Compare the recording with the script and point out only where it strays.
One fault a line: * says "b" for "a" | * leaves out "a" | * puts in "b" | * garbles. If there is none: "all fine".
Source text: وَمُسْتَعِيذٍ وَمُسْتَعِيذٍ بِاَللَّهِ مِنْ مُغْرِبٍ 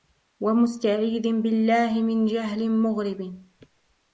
* leaves out "وَمُسْتَعِيذٍ"
* puts in "جَهْلٍ"